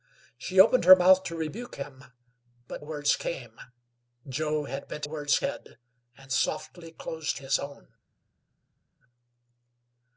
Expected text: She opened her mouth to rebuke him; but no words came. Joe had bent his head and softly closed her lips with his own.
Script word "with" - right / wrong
wrong